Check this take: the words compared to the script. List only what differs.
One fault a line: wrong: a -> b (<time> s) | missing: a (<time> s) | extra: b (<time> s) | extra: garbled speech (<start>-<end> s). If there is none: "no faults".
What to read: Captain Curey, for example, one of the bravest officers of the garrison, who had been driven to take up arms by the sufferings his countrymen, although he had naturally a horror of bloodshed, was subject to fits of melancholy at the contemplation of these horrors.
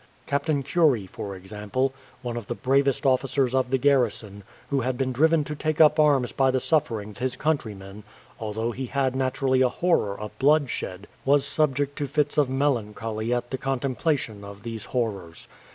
no faults